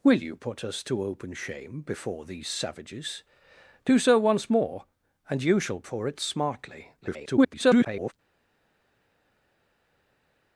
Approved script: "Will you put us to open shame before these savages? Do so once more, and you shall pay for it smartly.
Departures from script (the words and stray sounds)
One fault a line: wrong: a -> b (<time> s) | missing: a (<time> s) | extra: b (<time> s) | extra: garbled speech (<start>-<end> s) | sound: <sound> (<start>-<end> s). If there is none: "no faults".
missing: pay (5.8 s)
extra: garbled speech (7.0-8.1 s)